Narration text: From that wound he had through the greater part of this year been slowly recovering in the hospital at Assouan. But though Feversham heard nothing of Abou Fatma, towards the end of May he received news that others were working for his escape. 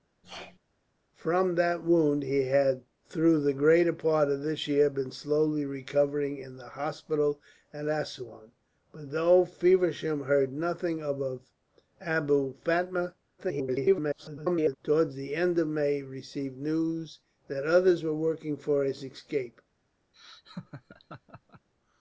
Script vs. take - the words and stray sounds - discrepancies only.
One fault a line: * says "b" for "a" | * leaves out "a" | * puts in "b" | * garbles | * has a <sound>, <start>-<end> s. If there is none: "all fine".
* has a sneeze, 0.2-0.6 s
* garbles
* has a laugh, 20.1-21.7 s